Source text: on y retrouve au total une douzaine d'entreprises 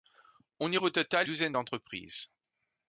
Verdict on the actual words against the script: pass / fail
fail